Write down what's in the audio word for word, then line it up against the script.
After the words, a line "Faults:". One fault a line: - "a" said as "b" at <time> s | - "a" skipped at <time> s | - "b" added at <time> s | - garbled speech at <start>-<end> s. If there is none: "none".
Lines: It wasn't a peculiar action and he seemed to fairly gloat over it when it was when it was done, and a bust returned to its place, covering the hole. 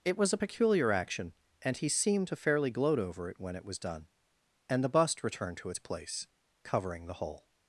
It was a peculiar action and he seemed to fairly gloat over it when it was done, and the bust returned to its place, covering the hole.
Faults:
- "wasn't" said as "was" at 0.2 s
- "when it was" skipped at 3.8 s
- "a" said as "the" at 4.8 s